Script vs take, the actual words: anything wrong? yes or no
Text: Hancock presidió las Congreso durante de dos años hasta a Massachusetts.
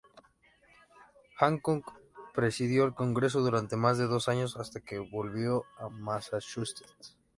yes